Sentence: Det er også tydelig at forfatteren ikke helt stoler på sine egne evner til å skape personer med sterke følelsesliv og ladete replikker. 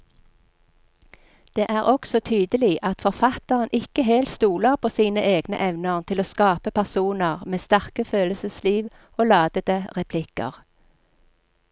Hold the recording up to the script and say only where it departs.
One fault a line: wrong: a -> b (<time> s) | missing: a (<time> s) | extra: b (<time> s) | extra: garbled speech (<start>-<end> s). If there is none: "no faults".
no faults